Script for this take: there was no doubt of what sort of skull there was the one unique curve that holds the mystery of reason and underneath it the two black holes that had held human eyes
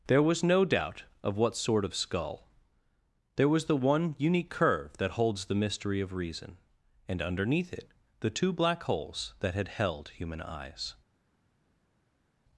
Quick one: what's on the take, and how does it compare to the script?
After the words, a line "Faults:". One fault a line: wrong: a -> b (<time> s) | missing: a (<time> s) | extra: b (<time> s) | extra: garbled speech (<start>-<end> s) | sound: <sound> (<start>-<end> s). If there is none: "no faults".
there was no doubt of what sort of skull there was the one unique curve that holds the mystery of reason and underneath it the two black holes that had held human eyes
Faults:
no faults